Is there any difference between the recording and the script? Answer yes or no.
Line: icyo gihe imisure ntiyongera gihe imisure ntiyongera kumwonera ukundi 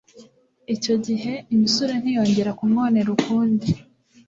yes